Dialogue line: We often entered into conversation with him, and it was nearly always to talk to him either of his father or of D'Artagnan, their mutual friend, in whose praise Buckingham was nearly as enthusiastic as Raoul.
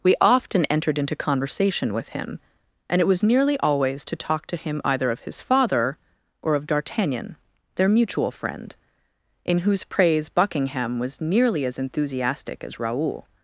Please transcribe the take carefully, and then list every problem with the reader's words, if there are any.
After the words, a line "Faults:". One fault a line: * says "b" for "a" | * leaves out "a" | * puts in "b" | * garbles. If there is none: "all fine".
We often entered into conversation with him, and it was nearly always to talk to him either of his father or of D'Artagnan, their mutual friend, in whose praise Buckingham was nearly as enthusiastic as Raoul.
Faults:
all fine